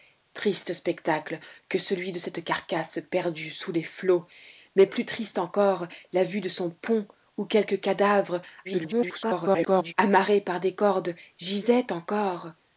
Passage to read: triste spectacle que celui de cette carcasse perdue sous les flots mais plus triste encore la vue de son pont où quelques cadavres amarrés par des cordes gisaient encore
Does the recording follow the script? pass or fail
fail